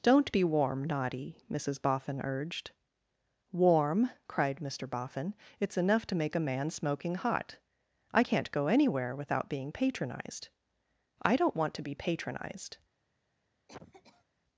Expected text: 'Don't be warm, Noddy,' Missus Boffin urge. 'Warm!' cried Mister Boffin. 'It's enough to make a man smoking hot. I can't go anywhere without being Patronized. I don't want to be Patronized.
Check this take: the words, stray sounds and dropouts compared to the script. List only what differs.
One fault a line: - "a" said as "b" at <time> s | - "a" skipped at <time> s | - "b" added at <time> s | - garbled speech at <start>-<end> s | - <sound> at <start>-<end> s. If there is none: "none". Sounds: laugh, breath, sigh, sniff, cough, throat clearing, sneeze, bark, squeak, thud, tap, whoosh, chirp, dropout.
- "urge" said as "urged" at 2.2 s
- cough at 13.7-14.2 s